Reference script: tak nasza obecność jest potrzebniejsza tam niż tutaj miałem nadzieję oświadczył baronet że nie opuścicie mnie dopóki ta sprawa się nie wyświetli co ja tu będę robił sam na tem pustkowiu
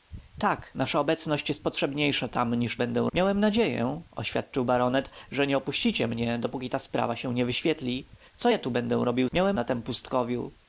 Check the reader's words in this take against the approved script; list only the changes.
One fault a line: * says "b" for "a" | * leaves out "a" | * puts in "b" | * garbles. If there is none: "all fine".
* says "będę" for "tutaj"
* says "miałem" for "sam"